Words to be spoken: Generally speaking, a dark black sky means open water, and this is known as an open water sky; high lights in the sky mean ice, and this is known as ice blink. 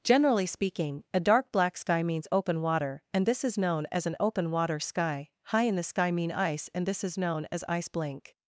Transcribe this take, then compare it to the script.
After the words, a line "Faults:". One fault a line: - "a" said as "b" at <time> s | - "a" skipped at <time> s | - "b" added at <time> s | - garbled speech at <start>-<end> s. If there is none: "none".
Generally speaking, a dark black sky means open water, and this is known as an open water sky; high in the sky mean ice, and this is known as ice blink.
Faults:
- "lights" skipped at 5.6 s